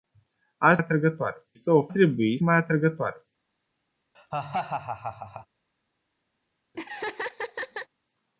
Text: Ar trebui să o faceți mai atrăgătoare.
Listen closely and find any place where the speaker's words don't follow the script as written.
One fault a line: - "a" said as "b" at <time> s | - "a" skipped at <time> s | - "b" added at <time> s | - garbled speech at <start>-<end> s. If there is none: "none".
- "trebui" said as "atrăgătoare" at 0.8 s
- "faceți" said as "trebui" at 1.9 s